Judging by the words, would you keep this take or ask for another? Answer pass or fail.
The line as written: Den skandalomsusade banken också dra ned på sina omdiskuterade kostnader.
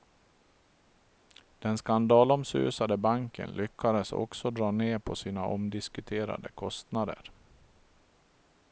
fail